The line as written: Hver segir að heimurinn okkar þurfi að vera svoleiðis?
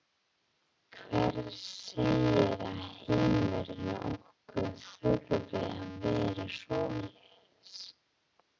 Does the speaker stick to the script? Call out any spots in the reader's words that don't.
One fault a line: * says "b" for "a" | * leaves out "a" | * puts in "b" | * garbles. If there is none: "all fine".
all fine